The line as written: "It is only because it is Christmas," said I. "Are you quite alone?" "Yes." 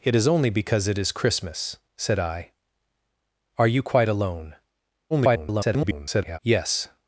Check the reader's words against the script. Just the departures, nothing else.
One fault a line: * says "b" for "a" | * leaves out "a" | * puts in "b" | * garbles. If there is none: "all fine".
* garbles